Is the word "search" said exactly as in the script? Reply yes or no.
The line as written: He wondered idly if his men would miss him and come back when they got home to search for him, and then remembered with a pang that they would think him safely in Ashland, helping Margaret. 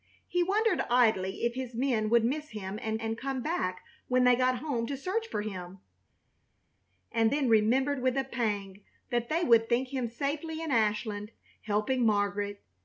yes